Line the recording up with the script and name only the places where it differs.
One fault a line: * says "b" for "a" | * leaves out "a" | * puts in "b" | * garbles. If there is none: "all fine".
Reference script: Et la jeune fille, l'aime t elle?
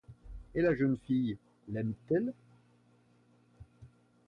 all fine